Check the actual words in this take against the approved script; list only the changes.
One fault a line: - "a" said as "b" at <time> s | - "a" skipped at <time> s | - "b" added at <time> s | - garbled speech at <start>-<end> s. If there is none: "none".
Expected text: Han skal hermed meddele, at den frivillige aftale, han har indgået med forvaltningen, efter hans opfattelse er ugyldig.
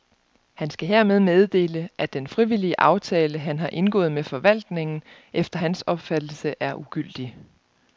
none